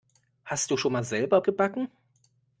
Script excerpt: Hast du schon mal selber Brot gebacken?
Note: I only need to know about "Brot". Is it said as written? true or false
false